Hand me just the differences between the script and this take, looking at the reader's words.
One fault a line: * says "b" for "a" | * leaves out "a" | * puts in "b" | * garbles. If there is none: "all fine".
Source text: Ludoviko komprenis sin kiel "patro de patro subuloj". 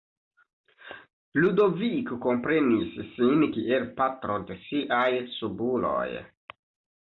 * says "siaj" for "patro"